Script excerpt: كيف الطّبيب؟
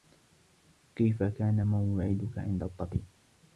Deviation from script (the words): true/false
true